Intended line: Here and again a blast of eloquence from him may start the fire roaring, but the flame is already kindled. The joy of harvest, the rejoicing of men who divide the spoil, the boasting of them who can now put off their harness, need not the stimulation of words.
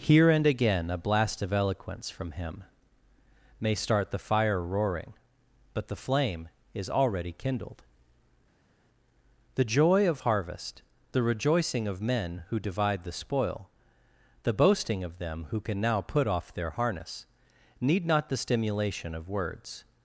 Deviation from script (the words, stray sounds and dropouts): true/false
false